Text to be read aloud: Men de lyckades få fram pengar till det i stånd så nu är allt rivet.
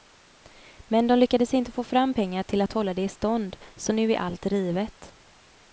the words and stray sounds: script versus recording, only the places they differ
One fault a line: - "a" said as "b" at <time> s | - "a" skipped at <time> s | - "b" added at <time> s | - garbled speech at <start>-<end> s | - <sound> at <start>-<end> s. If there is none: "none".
- "inte" added at 1.5 s
- "att hålla" added at 2.6 s